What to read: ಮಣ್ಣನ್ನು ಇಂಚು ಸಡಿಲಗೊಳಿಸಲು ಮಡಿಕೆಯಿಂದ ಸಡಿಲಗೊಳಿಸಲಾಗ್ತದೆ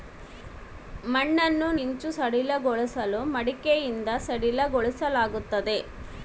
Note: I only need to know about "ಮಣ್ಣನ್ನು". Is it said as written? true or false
true